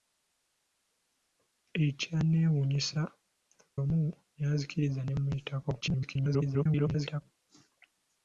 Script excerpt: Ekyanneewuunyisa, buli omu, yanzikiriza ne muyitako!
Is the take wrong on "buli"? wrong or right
wrong